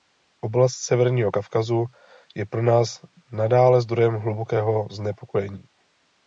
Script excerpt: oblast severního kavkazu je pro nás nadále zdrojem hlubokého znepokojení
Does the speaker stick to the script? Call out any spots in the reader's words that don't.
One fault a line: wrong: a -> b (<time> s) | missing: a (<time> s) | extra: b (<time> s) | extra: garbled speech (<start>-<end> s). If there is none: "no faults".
no faults